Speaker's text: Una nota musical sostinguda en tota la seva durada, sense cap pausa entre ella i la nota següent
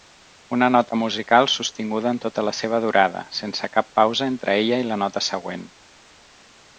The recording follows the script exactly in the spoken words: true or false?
true